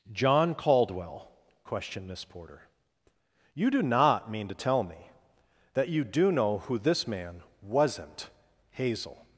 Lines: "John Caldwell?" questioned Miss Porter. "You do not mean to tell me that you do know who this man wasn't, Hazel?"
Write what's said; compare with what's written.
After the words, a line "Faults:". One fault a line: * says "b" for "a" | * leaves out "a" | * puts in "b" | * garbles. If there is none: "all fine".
"John Caldwell?" questioned Miss Porter. "You do not mean to tell me that you do know who this man wasn't, Hazel?"
Faults:
all fine